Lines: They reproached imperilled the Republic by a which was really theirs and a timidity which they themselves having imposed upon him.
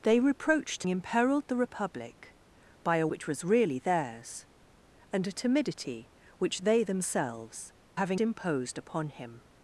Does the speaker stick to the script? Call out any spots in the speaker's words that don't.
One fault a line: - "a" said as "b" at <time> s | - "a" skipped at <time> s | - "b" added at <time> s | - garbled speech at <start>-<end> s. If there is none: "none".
none